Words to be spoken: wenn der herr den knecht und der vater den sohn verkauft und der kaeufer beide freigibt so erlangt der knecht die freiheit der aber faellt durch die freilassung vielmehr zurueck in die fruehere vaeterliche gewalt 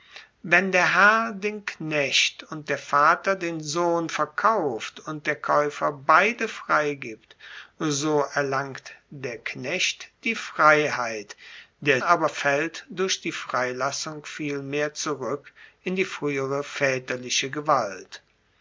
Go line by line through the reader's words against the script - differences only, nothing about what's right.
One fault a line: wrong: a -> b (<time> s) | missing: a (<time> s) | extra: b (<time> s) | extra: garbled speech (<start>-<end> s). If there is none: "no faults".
no faults